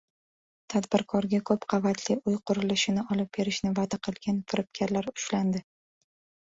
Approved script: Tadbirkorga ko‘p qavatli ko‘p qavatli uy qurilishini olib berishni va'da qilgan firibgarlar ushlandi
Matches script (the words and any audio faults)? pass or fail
fail